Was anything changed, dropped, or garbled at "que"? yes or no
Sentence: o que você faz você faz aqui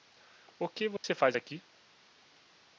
no